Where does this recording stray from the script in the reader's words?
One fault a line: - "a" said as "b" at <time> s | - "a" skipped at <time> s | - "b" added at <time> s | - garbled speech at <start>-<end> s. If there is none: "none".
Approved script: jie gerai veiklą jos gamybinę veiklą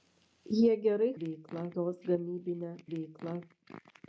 none